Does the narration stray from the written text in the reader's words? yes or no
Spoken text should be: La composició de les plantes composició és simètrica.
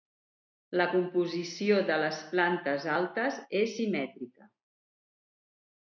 yes